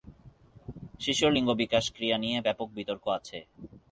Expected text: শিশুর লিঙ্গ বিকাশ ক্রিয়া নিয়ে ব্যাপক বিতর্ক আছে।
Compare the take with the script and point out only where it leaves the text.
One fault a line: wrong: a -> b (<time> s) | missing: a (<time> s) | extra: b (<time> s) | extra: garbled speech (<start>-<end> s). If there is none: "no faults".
no faults